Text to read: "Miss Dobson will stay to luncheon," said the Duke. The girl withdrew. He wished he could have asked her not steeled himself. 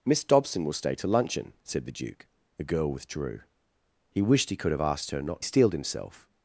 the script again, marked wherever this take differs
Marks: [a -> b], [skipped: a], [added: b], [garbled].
"Miss Dobson will stay to luncheon," said the Duke. The girl withdrew. He wished he could have asked her not steeled himself.